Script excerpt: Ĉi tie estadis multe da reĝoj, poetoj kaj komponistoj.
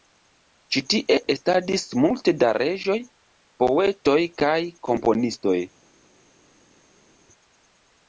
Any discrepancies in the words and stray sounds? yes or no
no